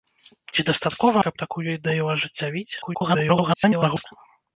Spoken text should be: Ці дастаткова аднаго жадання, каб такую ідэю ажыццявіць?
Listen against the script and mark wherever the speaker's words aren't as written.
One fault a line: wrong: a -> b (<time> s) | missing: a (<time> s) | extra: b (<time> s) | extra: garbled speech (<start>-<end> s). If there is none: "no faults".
missing: аднаго жадання (1.2 s)
extra: garbled speech (2.8-4.1 s)